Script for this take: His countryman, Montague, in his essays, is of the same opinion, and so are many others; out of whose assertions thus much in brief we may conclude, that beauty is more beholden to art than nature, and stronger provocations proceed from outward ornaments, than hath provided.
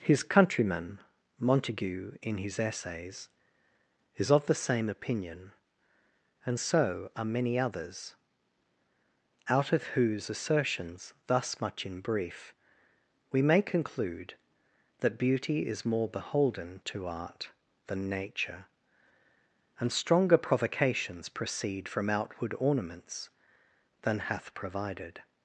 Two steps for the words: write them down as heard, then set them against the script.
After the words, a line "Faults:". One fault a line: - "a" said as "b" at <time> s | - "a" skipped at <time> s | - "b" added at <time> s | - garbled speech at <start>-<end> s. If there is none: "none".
His countryman, Montague, in his essays, is of the same opinion, and so are many others; out of whose assertions thus much in brief we may conclude, that beauty is more beholden to art than nature, and stronger provocations proceed from outward ornaments, than hath provided.
Faults:
none